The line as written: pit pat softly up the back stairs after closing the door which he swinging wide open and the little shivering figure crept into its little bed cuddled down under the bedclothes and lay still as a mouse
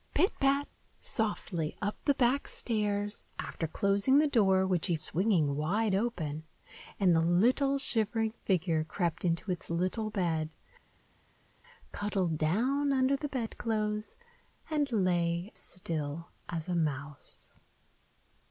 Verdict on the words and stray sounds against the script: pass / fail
pass